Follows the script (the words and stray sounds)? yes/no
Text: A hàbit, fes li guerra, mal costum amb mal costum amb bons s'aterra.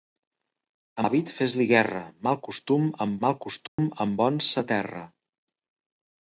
no